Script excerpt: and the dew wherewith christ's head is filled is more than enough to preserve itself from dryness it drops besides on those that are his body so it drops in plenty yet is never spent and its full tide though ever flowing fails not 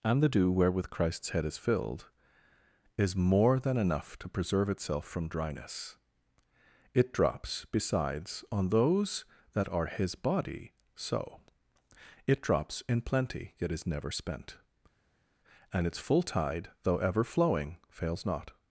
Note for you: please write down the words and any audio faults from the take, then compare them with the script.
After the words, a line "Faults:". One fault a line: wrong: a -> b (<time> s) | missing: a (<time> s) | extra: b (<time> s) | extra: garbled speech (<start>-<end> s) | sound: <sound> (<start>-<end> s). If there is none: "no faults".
and the dew wherewith christ's head is filled is more than enough to preserve itself from dryness it drops besides on those that are his body so it drops in plenty yet is never spent and its full tide though ever flowing fails not
Faults:
no faults